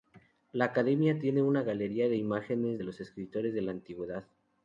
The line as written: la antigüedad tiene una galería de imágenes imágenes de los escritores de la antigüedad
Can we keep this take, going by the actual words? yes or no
no